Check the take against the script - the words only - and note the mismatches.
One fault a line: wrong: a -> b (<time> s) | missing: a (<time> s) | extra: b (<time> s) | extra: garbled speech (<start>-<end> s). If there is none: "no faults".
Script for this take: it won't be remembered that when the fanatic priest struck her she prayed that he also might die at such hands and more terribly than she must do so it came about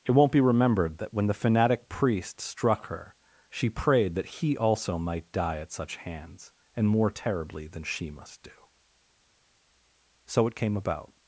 no faults